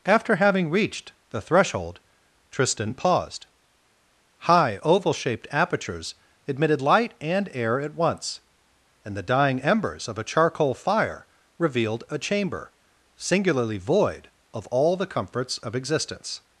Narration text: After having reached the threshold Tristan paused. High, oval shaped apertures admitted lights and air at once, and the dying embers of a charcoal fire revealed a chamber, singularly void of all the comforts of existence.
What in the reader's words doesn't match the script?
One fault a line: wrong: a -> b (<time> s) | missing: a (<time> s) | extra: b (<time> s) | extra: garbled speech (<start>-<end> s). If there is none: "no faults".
wrong: lights -> light (6.8 s)